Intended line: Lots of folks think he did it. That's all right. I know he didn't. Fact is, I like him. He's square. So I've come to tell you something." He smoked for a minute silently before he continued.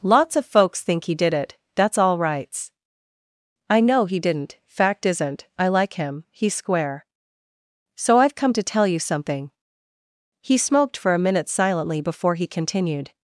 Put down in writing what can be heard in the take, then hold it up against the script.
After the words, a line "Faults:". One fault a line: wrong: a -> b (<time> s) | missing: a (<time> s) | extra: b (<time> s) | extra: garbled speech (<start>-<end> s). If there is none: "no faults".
Lots of folks think he did it. That's all rights. I know he didn't. Fact isn't, I like him. He's square. So I've come to tell you something." He smoked for a minute silently before he continued.
Faults:
wrong: right -> rights (2.2 s)
wrong: is -> isn't (5.0 s)